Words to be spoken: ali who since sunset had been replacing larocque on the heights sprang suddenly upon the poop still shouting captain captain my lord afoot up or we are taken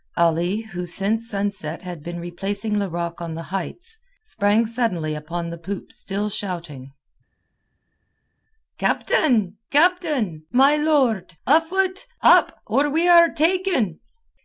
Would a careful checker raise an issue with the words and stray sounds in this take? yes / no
no